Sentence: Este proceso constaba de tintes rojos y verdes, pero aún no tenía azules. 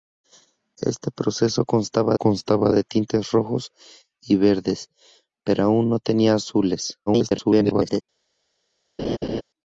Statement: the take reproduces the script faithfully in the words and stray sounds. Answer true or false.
false